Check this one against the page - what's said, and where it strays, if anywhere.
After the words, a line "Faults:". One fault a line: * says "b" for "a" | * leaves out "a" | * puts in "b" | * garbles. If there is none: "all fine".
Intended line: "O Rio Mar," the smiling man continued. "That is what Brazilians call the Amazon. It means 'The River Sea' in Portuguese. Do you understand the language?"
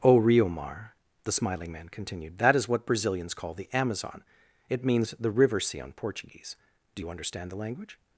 "O Rio Mar," the smiling man continued. "That is what Brazilians call the Amazon. It means 'The River Sea' on Portuguese. Do you understand the language?"
Faults:
* says "on" for "in"